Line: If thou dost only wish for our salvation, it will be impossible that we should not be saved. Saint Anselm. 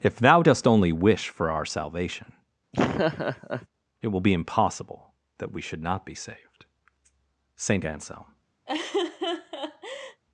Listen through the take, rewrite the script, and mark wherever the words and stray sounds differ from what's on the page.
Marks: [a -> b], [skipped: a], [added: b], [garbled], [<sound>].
If thou dost only wish for our salvation, [laugh] it will be impossible that we should not be saved. Saint Anselm. [laugh]